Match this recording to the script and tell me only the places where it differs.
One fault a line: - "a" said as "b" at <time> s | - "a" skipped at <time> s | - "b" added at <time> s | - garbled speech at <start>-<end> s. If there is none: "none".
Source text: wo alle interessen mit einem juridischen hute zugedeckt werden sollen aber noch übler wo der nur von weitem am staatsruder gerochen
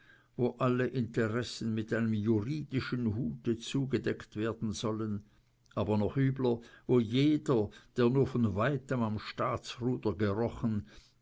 - "jeder" added at 7.0 s